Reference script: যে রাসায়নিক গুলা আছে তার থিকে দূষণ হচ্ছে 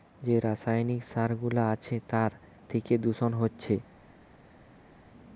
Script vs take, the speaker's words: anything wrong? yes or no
yes